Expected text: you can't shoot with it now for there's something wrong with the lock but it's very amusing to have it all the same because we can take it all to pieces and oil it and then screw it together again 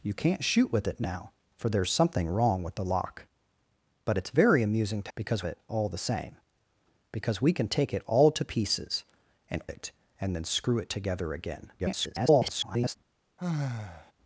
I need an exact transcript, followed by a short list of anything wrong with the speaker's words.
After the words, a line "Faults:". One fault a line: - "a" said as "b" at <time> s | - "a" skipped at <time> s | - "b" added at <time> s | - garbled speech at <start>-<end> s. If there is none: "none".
you can't shoot with it now for there's something wrong with the lock but it's very amusing to because it all the same because we can take it all to pieces and it and then screw it together again [garbled]
Faults:
- "have" said as "because" at 5.1 s
- "oil" skipped at 9.6 s
- garbled speech at 11.8-13.0 s